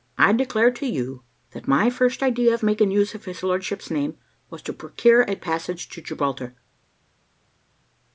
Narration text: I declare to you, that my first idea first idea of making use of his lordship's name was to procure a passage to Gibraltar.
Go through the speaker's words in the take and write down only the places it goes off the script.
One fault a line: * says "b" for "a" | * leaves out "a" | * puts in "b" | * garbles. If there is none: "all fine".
* leaves out "first idea"